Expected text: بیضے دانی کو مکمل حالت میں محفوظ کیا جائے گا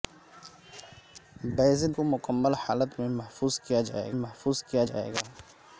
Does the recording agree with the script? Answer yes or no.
no